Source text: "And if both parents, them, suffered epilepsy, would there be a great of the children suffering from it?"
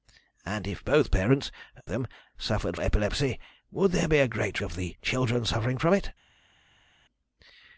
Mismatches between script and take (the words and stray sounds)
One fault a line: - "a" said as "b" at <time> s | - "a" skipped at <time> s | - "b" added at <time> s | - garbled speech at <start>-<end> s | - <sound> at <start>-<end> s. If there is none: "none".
none